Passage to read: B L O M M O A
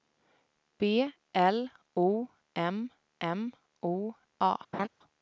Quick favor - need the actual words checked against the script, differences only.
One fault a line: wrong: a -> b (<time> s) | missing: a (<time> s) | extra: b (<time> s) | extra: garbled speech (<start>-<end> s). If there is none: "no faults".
no faults